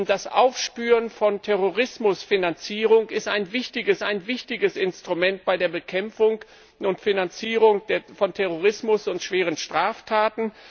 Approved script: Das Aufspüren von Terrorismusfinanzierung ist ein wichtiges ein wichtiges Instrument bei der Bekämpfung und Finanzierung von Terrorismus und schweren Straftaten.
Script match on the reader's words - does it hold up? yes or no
yes